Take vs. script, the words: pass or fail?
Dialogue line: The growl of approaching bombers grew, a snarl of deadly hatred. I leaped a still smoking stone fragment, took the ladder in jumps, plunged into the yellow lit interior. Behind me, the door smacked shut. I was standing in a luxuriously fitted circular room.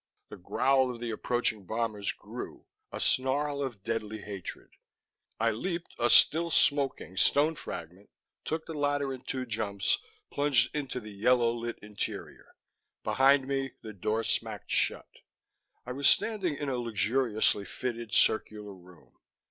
fail